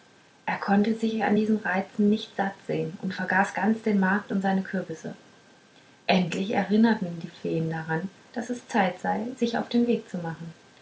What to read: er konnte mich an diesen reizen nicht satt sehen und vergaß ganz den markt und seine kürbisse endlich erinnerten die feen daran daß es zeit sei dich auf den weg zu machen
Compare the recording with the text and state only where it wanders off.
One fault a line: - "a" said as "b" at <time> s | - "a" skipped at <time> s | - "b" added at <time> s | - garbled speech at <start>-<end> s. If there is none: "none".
- "mich" said as "sich" at 0.9 s
- "dich" said as "sich" at 9.4 s